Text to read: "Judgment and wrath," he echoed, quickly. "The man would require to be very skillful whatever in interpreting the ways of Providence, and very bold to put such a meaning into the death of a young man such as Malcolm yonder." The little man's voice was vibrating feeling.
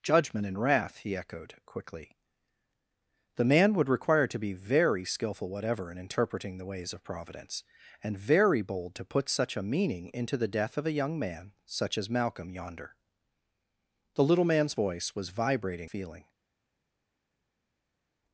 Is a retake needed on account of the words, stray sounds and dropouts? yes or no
no